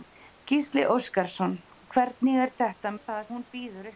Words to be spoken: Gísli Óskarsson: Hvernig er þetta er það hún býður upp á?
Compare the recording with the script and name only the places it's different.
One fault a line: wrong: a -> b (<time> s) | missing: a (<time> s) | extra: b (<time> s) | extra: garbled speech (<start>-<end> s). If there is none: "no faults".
no faults